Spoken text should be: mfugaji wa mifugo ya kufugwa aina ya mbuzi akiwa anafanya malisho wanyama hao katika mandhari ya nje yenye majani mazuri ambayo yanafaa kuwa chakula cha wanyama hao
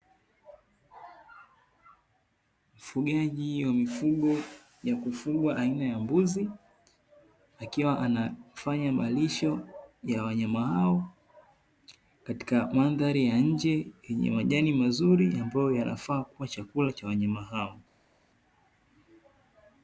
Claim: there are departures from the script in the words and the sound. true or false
true